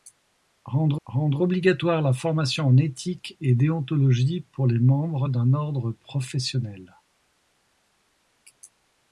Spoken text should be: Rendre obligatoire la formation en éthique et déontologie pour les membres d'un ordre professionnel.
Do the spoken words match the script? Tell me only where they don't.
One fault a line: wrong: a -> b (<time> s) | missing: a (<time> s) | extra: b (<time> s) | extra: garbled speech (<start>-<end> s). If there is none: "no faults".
extra: rendre (1.1 s)